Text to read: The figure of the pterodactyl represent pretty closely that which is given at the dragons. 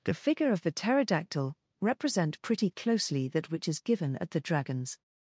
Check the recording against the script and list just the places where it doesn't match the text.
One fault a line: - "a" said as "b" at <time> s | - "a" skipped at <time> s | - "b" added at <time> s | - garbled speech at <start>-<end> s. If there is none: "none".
none